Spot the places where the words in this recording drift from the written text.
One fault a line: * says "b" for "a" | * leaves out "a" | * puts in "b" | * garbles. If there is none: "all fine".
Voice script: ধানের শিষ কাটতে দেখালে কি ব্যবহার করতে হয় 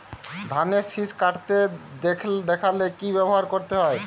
all fine